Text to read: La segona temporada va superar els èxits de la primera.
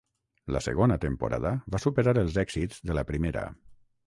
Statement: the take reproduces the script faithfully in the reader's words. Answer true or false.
true